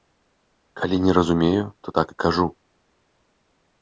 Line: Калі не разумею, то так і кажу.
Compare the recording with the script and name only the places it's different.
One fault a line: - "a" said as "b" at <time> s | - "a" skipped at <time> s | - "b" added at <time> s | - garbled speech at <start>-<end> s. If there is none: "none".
none